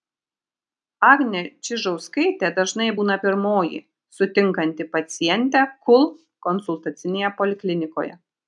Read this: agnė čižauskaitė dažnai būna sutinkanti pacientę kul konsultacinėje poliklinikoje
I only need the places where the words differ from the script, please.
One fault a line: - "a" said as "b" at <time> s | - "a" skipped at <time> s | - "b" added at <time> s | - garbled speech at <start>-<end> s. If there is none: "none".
- "pirmoji" added at 3.3 s